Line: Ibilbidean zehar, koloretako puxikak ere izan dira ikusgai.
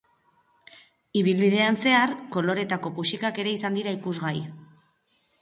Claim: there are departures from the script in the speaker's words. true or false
false